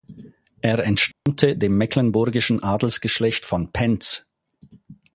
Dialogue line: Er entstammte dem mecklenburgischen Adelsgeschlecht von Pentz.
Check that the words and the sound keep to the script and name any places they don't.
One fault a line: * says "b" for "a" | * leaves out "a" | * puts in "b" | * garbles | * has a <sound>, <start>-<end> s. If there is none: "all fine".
* has a dropout, 1.1-1.3 s